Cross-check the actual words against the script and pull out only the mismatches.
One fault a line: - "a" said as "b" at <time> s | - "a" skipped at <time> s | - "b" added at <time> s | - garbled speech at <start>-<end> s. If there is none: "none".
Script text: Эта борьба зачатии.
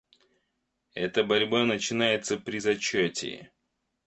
- "начинается при" added at 1.6 s